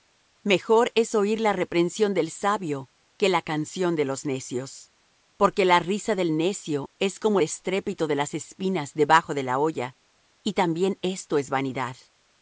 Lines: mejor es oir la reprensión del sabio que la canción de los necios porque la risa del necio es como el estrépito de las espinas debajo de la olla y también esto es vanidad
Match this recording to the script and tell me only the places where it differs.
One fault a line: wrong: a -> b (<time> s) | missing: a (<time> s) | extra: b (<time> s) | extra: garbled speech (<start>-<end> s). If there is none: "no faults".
missing: el (7.4 s)